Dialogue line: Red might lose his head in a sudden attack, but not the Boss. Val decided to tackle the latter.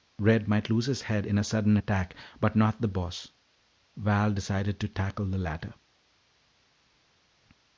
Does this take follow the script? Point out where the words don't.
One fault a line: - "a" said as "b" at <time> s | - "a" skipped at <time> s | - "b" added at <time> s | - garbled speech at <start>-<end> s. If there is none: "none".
none